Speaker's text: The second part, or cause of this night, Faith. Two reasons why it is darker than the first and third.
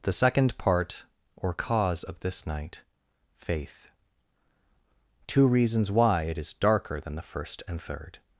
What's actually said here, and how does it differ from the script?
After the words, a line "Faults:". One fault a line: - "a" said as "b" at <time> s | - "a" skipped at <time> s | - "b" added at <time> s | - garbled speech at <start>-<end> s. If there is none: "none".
The second part, or cause of this night, Faith. Two reasons why it is darker than the first and third.
Faults:
none